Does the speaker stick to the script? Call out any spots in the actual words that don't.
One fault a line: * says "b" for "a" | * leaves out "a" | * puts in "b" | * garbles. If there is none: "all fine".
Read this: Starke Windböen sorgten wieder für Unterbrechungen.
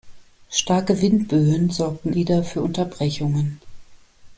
all fine